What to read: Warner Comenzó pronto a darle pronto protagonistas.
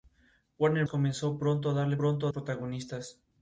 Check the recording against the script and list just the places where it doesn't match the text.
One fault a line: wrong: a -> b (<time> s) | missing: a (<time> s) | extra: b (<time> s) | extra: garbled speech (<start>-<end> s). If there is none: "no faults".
no faults